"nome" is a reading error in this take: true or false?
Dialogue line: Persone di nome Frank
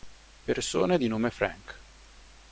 false